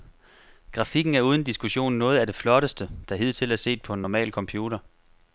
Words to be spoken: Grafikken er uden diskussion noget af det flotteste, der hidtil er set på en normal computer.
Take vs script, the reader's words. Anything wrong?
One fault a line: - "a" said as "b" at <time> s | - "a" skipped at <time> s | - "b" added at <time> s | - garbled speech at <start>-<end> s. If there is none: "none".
none